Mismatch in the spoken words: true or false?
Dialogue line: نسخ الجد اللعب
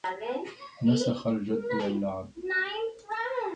false